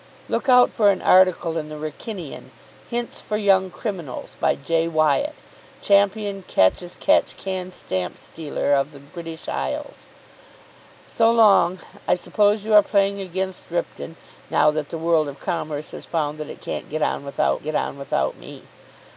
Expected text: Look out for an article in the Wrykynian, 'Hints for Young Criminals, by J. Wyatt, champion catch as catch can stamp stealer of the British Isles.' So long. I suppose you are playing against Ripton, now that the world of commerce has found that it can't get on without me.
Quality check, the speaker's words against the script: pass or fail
fail